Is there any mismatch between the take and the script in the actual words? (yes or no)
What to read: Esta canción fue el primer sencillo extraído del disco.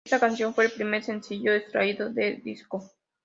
no